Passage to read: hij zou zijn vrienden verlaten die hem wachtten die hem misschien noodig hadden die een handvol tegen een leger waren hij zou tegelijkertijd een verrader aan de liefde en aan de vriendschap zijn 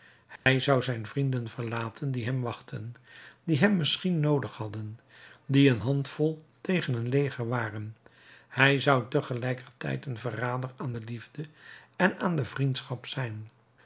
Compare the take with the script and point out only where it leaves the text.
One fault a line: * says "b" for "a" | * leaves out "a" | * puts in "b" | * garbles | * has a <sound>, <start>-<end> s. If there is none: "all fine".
* has a dropout, 0.4-0.5 s